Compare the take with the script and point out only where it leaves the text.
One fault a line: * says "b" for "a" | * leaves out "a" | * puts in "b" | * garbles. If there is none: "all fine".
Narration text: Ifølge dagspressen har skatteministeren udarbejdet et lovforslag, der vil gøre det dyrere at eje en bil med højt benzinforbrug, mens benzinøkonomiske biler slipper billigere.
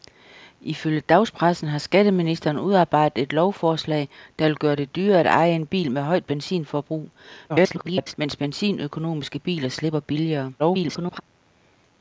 * garbles
* garbles